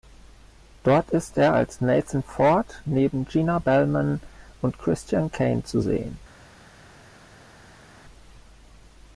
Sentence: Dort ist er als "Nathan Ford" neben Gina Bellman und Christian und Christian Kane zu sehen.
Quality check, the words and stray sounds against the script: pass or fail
fail